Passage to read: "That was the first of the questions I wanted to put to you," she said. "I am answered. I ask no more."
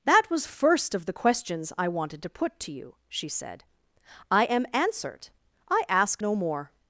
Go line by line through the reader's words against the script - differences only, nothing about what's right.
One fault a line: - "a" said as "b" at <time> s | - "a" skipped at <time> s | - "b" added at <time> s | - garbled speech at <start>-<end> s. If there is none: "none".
- "the" skipped at 0.5 s